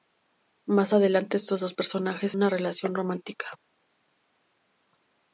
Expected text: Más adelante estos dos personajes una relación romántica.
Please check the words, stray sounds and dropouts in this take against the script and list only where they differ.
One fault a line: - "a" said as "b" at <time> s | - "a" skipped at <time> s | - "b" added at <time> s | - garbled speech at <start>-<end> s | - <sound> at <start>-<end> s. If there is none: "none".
none